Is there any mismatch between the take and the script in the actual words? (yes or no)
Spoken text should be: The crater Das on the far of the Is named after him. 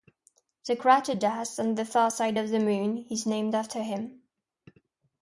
yes